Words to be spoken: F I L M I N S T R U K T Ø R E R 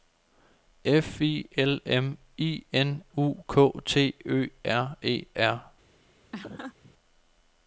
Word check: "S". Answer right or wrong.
wrong